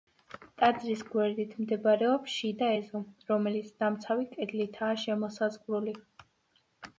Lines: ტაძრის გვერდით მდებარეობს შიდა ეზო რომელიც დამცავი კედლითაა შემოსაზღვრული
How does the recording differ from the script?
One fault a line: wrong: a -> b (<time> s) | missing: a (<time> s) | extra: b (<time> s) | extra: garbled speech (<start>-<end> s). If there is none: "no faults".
no faults